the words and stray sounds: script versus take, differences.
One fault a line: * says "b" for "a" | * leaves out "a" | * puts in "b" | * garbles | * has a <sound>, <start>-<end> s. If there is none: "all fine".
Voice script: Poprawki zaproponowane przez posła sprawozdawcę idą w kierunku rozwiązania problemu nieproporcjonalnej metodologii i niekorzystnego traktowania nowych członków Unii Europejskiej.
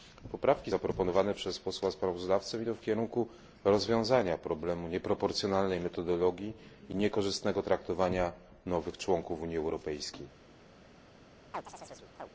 * has a chirp, 11.5-12.3 s